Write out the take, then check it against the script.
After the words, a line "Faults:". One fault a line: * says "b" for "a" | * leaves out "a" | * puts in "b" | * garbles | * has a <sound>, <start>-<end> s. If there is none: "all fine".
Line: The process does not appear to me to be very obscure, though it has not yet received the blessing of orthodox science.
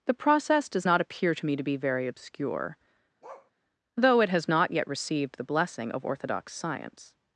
The process does not appear to me to be very obscure, though it has not yet received the blessing of orthodox science.
Faults:
* has a bark, 3.2-3.5 s